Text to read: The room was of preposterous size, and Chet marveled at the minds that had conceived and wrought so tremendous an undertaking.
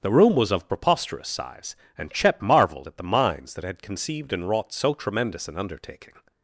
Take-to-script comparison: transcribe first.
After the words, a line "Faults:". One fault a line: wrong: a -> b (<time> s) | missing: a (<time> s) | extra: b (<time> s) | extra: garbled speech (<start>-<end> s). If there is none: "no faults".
The room was of preposterous size, and Chet marveled at the minds that had conceived and wrought so tremendous an undertaking.
Faults:
no faults